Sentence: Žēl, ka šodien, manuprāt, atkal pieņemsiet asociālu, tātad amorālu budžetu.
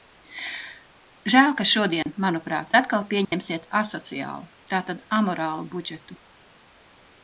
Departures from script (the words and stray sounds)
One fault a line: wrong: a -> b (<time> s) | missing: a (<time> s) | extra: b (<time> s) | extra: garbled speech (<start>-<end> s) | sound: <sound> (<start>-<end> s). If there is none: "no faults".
sound: dropout (2.0-2.1 s)
sound: dropout (3.2-3.3 s)